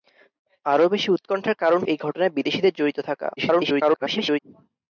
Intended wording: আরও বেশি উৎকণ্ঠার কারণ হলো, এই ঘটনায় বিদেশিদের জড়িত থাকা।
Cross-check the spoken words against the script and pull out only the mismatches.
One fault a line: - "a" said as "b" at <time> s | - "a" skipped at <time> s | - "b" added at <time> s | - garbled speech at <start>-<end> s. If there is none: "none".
- "হলো" skipped at 1.8 s
- garbled speech at 3.4-4.4 s